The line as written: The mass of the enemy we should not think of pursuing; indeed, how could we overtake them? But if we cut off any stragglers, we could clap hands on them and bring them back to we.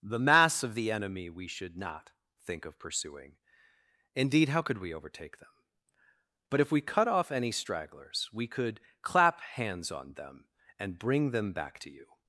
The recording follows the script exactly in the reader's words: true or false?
false